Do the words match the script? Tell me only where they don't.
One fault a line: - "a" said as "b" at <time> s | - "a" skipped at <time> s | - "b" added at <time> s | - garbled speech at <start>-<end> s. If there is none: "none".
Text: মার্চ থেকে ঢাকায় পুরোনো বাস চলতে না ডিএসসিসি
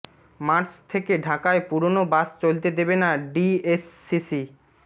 - "দেবে" added at 2.8 s